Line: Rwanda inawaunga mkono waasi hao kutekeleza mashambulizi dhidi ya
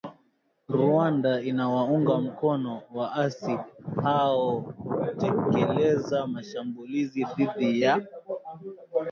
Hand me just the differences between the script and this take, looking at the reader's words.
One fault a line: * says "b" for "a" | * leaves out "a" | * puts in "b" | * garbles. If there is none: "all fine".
all fine